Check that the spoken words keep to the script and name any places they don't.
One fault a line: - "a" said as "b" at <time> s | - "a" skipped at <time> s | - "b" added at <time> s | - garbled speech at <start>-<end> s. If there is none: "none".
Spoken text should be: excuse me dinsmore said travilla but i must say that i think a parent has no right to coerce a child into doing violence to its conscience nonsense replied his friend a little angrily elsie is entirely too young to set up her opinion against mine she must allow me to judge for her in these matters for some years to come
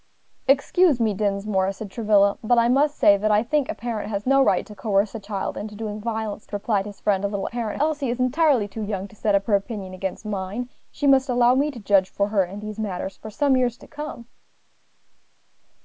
- "its conscience nonsense" skipped at 6.5 s
- "angrily" said as "parent" at 7.5 s